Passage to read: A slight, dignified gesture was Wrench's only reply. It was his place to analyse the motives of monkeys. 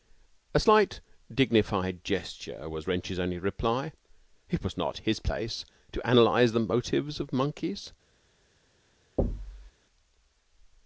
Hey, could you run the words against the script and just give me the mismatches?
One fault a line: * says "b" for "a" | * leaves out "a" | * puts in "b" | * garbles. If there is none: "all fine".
* puts in "not"